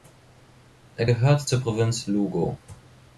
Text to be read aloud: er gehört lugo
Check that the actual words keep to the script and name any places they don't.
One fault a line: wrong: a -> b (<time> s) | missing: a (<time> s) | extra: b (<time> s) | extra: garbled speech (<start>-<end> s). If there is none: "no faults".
extra: zur provinz (1.5 s)